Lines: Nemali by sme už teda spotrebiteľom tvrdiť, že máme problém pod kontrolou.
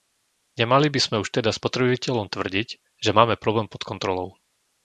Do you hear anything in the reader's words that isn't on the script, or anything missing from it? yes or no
no